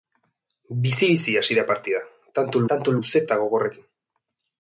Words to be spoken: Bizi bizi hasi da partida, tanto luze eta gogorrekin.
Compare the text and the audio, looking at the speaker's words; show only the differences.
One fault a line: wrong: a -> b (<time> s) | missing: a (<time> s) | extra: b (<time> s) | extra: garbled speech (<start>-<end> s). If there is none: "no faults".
extra: tanto (2.7 s)